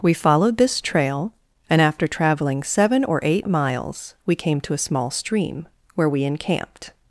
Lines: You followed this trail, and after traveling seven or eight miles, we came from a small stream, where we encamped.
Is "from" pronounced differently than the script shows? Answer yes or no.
yes